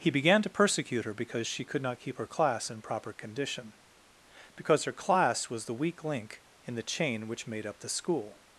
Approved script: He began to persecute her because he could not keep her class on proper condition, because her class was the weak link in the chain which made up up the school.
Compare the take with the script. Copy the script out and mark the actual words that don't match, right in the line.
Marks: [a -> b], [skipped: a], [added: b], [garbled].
He began to persecute her because [he -> she] could not keep her class [on -> in] proper condition, because her class was the weak link in the chain which made up [skipped: up] the school.